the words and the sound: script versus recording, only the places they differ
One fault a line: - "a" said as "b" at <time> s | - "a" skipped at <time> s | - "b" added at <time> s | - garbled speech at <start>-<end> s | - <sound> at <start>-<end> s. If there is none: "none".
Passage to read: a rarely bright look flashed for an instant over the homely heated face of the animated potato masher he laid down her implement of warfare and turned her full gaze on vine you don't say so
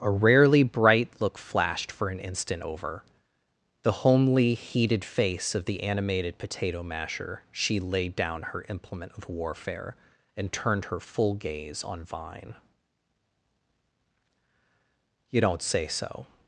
- "he" said as "she" at 7.5 s